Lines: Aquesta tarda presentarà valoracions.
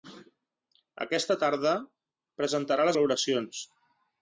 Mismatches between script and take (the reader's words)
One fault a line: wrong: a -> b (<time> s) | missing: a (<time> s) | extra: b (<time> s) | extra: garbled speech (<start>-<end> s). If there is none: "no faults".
no faults